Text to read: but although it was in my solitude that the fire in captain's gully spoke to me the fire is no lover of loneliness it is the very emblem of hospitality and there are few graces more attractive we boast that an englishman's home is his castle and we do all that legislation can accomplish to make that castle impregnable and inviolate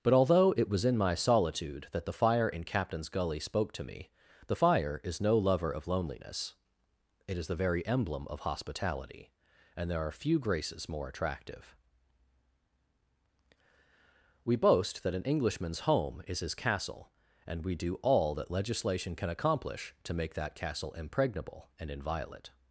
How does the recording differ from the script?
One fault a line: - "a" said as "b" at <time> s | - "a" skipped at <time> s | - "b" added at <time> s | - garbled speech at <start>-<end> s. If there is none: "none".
none